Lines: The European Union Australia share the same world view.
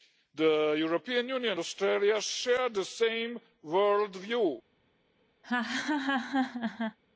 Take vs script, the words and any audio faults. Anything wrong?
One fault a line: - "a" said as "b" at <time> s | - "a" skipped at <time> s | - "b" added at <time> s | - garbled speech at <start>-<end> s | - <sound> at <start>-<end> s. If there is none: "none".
- laugh at 5.4-7.0 s